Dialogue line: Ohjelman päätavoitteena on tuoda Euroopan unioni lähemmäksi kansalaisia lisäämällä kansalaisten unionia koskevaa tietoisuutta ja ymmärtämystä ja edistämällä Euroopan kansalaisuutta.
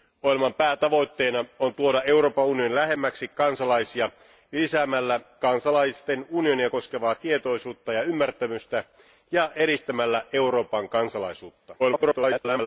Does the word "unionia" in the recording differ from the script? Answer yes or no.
no